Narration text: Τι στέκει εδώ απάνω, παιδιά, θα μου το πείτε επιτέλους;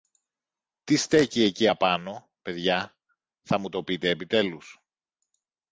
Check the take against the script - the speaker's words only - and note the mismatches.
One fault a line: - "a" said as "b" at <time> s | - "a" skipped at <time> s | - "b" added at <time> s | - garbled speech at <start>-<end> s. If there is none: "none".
- "εδώ" said as "εκεί" at 1.4 s